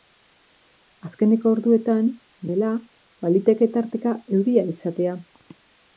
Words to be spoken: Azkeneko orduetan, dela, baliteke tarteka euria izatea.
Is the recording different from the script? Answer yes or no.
no